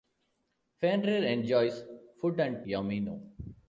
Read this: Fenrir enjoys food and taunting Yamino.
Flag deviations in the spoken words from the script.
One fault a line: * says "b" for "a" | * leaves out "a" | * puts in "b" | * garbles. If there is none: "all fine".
* leaves out "taunting"